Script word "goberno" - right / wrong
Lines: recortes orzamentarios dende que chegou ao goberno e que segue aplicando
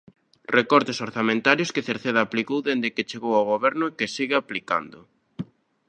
right